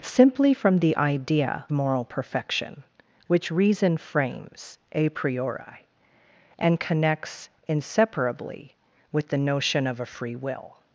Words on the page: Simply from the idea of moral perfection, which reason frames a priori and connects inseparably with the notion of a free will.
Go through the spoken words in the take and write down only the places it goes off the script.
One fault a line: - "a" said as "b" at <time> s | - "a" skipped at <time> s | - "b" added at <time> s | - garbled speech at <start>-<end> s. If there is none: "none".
- "of" skipped at 1.6 s